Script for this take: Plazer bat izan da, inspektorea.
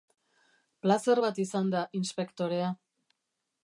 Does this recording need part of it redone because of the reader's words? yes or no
no